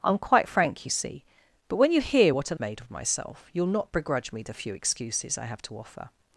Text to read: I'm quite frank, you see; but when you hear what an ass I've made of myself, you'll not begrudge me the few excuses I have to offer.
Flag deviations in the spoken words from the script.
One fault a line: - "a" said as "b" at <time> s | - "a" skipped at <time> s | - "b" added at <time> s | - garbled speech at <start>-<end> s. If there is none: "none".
- "ass I've" skipped at 2.6 s